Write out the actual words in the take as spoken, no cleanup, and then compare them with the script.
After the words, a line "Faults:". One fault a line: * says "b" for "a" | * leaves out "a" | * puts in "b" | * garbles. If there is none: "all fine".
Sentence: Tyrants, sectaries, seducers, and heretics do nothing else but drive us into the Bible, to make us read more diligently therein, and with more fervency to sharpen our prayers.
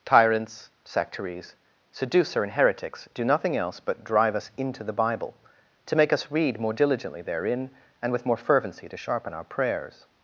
Tyrants, sectaries, seducer, and heretics do nothing else but drive us into the Bible, to make us read more diligently therein, and with more fervency to sharpen our prayers.
Faults:
* says "seducer" for "seducers"